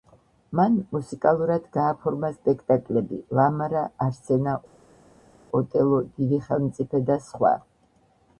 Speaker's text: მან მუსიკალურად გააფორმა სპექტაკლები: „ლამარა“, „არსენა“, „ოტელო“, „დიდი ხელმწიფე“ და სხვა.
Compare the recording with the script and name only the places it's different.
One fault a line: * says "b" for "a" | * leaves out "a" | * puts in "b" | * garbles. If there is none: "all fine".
all fine